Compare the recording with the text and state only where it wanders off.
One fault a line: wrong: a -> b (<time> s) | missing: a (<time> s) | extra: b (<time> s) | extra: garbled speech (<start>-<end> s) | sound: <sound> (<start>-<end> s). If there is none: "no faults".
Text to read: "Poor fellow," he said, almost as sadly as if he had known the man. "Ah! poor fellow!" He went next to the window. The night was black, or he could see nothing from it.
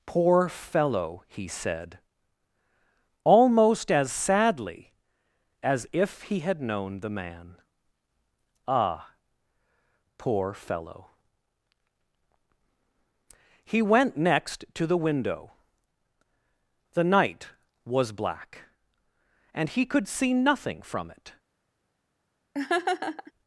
wrong: or -> and (19.5 s)
sound: laugh (22.5-23.3 s)